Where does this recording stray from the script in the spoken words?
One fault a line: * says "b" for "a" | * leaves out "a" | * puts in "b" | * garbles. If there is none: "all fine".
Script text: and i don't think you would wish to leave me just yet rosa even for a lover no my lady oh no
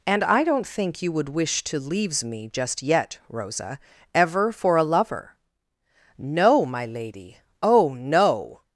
* says "leaves" for "leave"
* says "ever" for "even"